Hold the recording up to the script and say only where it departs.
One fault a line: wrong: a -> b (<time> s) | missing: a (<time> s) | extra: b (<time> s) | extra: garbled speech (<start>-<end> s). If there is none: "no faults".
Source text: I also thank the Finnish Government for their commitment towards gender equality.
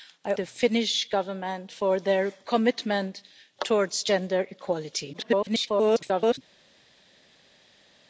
missing: also thank (0.3 s)
extra: garbled speech (5.1-6.4 s)